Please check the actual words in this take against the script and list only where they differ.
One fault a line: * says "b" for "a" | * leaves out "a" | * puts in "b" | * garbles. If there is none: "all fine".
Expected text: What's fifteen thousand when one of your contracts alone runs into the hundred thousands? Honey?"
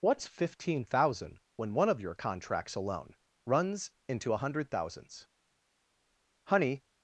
* says "a" for "the"